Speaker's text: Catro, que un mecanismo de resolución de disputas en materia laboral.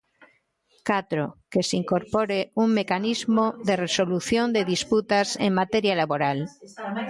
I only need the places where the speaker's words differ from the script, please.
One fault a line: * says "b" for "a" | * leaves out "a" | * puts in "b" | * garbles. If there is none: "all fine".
* puts in "se incorpore"